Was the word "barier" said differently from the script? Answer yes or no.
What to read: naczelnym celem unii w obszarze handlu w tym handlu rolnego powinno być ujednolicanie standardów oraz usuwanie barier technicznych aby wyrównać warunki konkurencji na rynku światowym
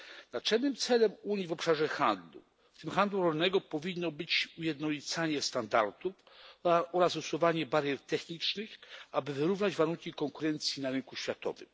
no